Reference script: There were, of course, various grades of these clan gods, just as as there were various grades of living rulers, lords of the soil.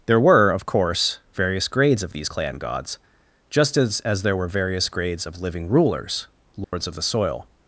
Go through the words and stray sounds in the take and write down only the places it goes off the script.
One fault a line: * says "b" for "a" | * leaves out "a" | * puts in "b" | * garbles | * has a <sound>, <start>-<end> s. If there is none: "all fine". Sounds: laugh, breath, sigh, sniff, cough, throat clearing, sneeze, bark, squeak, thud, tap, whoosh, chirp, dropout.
* has a dropout, 6.6-6.7 s